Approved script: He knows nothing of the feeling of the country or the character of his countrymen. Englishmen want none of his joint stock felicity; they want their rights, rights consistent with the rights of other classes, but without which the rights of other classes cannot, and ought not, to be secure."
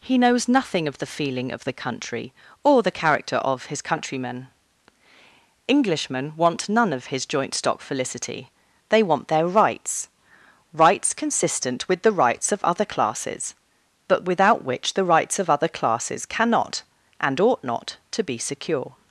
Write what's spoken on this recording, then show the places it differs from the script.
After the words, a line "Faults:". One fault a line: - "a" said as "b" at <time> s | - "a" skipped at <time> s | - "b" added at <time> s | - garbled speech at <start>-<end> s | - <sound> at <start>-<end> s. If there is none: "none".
He knows nothing of the feeling of the country or the character of his countrymen. Englishmen want none of his joint stock felicity; they want their rights, rights consistent with the rights of other classes, but without which the rights of other classes cannot, and ought not, to be secure."
Faults:
none